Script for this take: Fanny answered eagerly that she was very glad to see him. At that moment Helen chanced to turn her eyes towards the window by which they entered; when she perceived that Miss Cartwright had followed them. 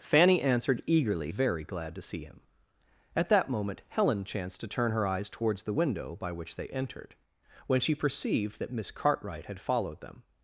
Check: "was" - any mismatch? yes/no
yes